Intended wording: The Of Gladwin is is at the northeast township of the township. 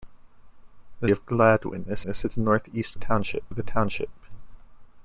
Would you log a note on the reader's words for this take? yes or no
no